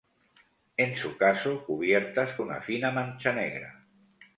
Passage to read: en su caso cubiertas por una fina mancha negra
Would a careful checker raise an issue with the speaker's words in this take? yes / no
yes